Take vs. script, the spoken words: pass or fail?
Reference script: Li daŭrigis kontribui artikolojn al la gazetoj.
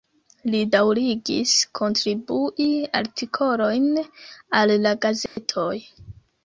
pass